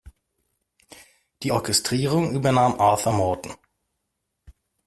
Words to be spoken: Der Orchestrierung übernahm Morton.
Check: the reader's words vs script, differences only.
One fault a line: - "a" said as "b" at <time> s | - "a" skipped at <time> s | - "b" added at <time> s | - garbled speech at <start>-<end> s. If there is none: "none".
- "Der" said as "Die" at 1.4 s
- "Arthur" added at 2.8 s